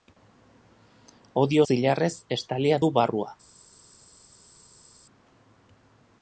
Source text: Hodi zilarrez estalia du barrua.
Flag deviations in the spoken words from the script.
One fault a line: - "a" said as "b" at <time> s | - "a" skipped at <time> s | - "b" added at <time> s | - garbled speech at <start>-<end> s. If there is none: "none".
none